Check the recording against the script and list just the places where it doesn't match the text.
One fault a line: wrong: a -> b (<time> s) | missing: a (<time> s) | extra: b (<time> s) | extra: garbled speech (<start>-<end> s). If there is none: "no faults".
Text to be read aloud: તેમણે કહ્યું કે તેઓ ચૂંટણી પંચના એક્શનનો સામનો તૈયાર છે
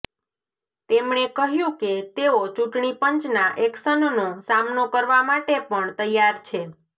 extra: કરવા માટે પણ (4.9 s)